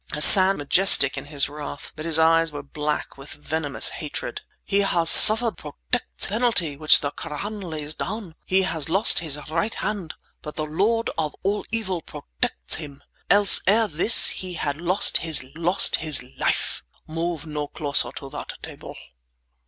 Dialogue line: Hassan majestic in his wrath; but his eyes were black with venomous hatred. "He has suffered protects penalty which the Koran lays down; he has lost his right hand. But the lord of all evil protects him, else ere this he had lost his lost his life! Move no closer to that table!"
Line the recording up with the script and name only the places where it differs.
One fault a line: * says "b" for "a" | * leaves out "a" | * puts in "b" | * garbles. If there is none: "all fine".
all fine